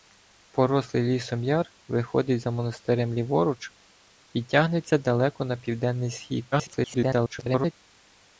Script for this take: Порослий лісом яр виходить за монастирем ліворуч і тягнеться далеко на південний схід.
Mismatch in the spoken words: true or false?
true